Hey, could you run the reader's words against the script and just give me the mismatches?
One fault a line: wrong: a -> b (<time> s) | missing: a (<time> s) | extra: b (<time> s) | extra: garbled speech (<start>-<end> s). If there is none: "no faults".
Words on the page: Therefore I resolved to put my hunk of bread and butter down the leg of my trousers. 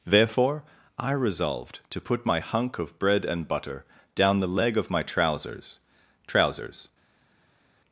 extra: trousers (6.3 s)